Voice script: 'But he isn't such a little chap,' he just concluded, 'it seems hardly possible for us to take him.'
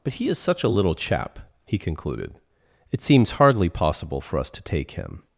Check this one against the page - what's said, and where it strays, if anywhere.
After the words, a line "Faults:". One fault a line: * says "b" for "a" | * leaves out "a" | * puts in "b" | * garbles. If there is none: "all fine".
'But he is such a little chap,' he concluded, 'it seems hardly possible for us to take him.'
Faults:
* says "is" for "isn't"
* leaves out "just"